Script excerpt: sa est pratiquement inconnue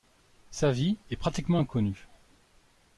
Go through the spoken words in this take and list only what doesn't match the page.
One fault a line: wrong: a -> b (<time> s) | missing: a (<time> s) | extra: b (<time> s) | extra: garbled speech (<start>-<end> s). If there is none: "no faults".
extra: vie (0.7 s)